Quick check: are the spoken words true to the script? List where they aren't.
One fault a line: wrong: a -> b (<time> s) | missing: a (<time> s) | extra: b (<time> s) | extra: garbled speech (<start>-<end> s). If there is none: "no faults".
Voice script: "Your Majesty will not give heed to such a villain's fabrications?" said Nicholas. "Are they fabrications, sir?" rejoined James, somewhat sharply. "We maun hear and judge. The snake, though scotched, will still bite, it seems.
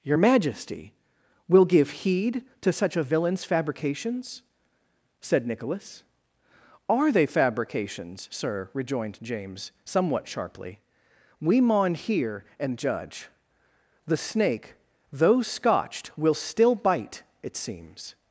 missing: not (1.7 s)